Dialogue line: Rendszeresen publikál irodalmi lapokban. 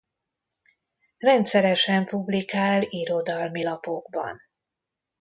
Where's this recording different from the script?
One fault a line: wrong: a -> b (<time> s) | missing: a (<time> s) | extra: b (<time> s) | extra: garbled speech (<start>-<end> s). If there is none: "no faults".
no faults